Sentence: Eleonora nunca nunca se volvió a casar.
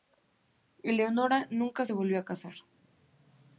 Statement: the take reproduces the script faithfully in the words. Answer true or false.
false